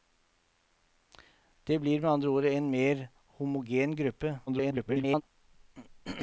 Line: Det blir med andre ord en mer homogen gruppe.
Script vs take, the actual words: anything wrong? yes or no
yes